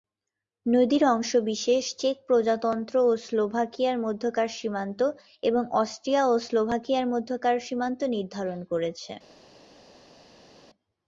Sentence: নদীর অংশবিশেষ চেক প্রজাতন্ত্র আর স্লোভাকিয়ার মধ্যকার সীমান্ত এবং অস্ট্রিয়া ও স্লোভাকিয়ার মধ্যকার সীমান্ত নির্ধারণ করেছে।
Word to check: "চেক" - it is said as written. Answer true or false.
true